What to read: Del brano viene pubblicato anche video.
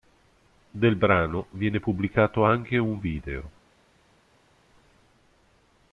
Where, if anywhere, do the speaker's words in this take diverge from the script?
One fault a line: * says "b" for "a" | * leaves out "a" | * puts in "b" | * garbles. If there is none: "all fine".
* puts in "un"